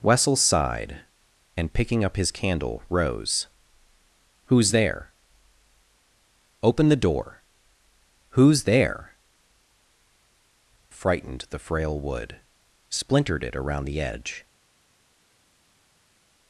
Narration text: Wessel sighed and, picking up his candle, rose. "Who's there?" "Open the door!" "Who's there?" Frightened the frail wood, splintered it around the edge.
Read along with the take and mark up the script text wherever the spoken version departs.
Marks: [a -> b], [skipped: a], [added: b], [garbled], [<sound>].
Wessel sighed and, picking up his candle, rose. "Who's there?" "Open the door!" "Who's there?" Frightened the frail wood, splintered it around the edge.